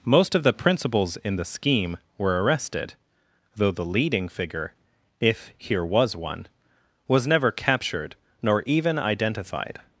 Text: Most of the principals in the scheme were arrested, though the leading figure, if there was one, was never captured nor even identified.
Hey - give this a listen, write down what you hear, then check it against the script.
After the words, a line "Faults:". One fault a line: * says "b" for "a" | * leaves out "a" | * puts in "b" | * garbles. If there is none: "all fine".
Most of the principals in the scheme were arrested, though the leading figure, if here was one, was never captured nor even identified.
Faults:
* says "here" for "there"